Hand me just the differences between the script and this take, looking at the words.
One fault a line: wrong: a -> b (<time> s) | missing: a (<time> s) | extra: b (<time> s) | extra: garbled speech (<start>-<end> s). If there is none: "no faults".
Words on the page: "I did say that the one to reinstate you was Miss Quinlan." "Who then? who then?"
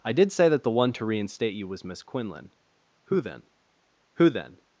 no faults